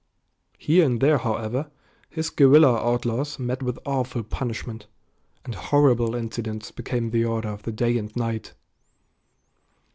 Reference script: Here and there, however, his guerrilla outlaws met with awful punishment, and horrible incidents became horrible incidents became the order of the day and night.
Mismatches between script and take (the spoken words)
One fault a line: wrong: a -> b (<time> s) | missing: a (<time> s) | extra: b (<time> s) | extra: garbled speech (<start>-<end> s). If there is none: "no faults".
missing: horrible incidents became (7.1 s)